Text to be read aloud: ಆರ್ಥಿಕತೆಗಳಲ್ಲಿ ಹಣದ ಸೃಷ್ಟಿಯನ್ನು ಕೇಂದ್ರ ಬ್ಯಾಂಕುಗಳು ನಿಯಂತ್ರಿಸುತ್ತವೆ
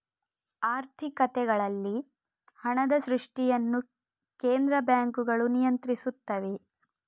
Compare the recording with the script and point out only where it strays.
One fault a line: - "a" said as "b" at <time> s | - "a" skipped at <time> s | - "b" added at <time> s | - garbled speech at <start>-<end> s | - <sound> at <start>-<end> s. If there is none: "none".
none